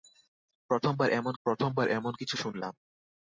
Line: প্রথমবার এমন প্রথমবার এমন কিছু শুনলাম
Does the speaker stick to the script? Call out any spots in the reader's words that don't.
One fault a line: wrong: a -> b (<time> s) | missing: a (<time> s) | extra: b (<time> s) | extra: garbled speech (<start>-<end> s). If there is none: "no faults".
no faults